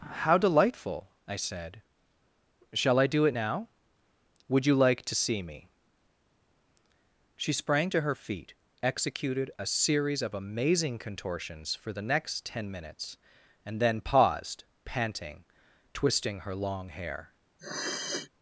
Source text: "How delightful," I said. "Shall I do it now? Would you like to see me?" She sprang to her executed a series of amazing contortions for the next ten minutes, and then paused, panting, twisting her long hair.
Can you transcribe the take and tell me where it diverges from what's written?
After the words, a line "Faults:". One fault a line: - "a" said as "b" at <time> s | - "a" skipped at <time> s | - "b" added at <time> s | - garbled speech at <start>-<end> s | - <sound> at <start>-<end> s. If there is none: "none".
"How delightful," I said. "Shall I do it now? Would you like to see me?" She sprang to her feet, executed a series of amazing contortions for the next ten minutes, and then paused, panting, twisting her long hair.
Faults:
- "feet" added at 8.1 s
- sniff at 17.6-18.3 s